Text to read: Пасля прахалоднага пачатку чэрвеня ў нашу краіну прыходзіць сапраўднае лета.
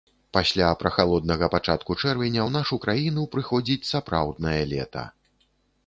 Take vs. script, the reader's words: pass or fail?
pass